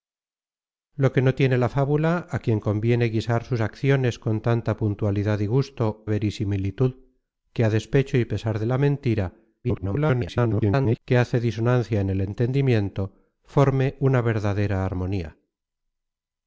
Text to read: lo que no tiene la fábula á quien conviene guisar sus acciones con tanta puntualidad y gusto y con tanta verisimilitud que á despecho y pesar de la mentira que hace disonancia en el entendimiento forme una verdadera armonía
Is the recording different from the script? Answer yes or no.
yes